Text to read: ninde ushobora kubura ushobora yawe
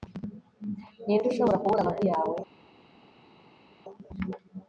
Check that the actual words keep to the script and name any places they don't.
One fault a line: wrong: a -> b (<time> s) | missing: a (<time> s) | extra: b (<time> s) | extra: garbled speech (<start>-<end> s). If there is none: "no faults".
wrong: ushobora -> amavi (1.8 s)